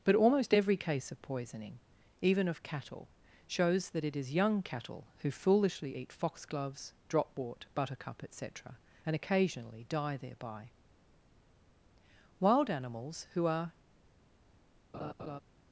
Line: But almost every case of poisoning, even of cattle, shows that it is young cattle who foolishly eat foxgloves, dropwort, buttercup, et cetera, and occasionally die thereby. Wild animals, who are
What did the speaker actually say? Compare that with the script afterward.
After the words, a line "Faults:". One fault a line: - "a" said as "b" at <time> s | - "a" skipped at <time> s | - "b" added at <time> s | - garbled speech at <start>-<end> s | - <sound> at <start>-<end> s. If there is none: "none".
But almost every case of poisoning, even of cattle, shows that it is young cattle who foolishly eat foxgloves, dropwort, buttercup, et cetera, and occasionally die thereby. Wild animals, who are
Faults:
- laugh at 14.9-15.4 s